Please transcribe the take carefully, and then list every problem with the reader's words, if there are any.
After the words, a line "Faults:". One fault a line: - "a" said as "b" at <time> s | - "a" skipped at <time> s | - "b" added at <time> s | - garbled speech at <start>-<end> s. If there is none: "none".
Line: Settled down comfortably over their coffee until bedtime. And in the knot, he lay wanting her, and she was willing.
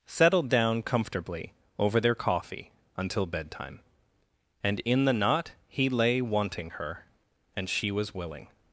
Settled down comfortably over their coffee until bedtime. And in the knot, he lay wanting her, and she was willing.
Faults:
none